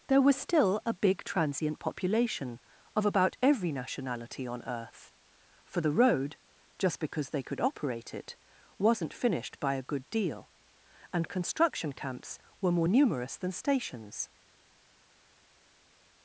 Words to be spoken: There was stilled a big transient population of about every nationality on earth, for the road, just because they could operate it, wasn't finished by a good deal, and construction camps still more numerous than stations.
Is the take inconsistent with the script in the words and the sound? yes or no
yes